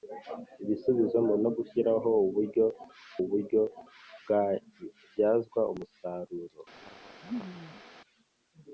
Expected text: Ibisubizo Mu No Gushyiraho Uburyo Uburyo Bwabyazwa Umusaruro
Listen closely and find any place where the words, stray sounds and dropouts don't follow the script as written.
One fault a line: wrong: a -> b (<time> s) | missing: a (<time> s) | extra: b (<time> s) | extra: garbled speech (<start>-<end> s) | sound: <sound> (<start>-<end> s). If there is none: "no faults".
sound: laugh (6.8-7.8 s)